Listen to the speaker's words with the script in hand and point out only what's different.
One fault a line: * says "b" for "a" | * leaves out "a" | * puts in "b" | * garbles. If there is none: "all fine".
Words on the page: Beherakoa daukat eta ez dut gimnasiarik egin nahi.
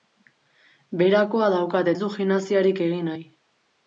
* leaves out "eta"